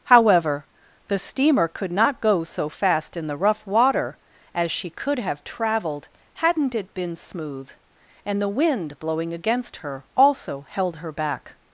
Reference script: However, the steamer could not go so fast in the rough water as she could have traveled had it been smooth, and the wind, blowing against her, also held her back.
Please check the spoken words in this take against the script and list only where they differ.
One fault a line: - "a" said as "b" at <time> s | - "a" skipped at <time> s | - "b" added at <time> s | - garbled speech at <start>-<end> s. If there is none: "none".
- "had" said as "hadn't" at 6.3 s